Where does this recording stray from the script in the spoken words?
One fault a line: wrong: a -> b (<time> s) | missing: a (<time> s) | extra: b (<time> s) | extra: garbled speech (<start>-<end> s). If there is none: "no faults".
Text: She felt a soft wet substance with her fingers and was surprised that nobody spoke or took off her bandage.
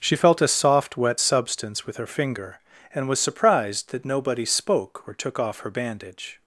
wrong: fingers -> finger (2.1 s)